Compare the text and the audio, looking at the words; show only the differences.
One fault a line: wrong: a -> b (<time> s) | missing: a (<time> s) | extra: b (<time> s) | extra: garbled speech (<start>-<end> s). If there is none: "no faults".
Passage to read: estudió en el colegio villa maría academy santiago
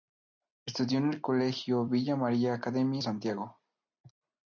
no faults